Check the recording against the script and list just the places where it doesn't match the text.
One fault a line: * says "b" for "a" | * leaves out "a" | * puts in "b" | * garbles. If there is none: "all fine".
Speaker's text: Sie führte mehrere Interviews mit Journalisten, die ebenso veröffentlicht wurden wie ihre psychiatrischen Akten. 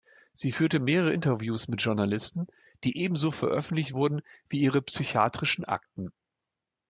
all fine